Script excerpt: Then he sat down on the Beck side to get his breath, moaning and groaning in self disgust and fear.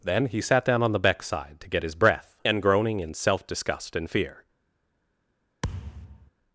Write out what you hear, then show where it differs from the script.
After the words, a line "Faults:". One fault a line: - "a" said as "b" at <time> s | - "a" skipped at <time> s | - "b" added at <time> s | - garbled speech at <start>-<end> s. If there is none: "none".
Then he sat down on the Beck side to get his breath, and groaning in self disgust and fear.
Faults:
- "moaning" skipped at 2.4 s